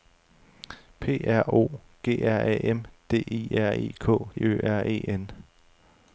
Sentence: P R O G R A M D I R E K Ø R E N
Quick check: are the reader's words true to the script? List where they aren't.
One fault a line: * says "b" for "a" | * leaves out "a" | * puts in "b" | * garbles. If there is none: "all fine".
all fine